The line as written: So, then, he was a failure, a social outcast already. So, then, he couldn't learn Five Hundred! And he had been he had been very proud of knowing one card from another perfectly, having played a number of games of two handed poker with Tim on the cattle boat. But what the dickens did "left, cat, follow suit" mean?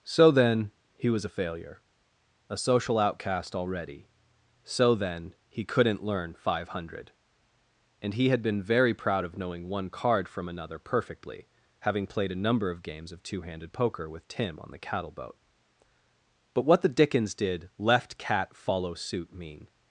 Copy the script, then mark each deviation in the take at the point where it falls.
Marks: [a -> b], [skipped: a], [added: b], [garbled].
So, then, he was a failure, a social outcast already. So, then, he couldn't learn Five Hundred! And he had been [skipped: he had been] very proud of knowing one card from another perfectly, having played a number of games of two handed poker with Tim on the cattle boat. But what the dickens did "left, cat, follow suit" mean?